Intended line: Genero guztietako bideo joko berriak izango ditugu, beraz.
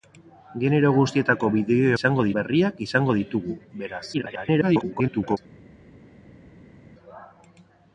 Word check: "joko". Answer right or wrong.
wrong